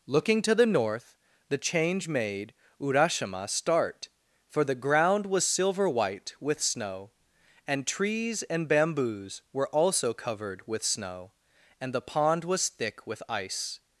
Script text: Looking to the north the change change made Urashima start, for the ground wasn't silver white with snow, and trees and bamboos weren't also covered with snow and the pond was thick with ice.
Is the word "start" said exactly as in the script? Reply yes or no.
yes